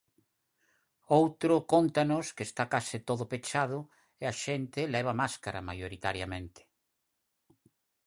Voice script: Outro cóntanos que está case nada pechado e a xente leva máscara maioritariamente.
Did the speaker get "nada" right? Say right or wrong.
wrong